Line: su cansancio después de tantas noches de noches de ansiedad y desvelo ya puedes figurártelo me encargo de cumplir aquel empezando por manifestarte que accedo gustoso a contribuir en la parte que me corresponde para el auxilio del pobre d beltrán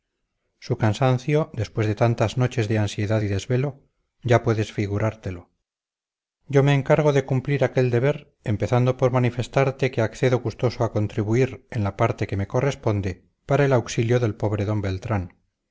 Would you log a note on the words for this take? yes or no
yes